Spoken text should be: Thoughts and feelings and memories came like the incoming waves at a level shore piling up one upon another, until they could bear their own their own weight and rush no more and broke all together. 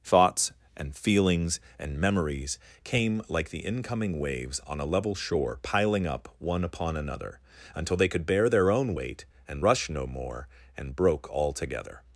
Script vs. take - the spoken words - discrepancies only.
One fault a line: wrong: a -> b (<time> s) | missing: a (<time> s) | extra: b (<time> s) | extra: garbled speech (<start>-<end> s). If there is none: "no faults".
wrong: at -> on (4.6 s)
missing: their own (8.9 s)